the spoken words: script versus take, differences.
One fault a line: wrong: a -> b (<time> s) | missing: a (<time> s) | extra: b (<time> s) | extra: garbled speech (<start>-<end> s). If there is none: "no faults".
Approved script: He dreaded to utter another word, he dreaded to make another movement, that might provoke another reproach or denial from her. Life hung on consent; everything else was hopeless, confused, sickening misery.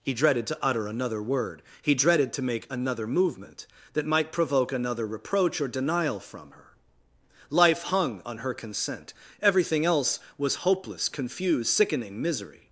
extra: her (8.4 s)